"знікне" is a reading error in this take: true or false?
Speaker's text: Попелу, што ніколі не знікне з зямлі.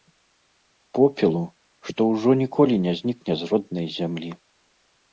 false